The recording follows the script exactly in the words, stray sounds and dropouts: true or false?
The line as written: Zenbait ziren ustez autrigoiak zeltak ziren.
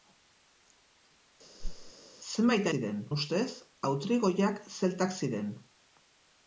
false